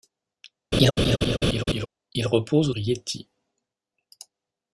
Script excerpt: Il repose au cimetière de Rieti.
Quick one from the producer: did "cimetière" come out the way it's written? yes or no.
no